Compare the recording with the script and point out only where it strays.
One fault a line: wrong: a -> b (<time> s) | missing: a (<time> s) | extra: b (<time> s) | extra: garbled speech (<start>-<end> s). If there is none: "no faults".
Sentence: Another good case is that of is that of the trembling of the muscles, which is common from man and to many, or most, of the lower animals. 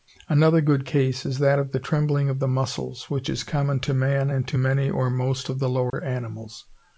missing: is that of (1.7 s)
wrong: from -> to (3.8 s)